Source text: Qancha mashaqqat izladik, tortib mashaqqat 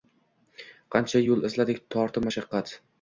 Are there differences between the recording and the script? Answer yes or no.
yes